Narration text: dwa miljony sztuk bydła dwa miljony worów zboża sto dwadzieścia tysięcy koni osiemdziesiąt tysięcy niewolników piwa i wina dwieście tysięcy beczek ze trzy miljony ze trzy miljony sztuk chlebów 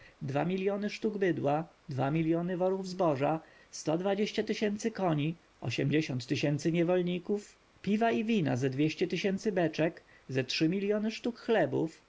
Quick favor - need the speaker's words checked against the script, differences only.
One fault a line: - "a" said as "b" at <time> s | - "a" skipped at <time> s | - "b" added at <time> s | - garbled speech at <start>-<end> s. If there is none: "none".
- "ze" added at 8.6 s
- "ze trzy miljony" skipped at 11.1 s